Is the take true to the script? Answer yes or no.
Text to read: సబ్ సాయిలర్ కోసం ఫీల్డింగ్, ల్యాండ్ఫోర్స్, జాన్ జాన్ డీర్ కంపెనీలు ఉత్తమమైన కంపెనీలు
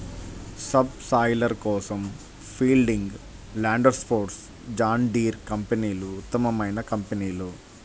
no